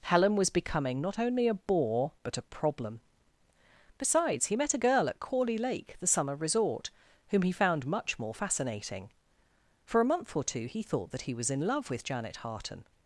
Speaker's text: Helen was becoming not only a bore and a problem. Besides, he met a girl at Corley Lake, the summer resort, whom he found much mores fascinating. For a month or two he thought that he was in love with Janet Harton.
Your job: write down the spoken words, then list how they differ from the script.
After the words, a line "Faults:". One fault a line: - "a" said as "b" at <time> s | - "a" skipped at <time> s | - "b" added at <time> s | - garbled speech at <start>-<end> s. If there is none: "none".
Helen was becoming not only a bore but a problem. Besides, he met a girl at Corley Lake, the summer resort, whom he found much more fascinating. For a month or two he thought that he was in love with Janet Harton.
Faults:
- "and" said as "but" at 2.2 s
- "mores" said as "more" at 8.2 s